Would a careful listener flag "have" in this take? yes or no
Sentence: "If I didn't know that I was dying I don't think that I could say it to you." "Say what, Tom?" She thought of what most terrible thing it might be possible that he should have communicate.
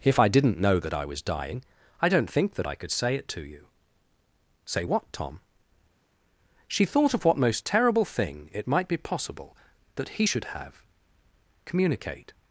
no